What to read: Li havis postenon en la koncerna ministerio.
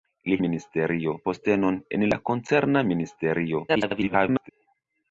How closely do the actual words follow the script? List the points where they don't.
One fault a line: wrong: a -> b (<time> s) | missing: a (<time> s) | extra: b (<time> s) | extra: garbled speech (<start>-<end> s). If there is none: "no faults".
wrong: havis -> ministerio (0.4 s)
extra: garbled speech (3.7-4.5 s)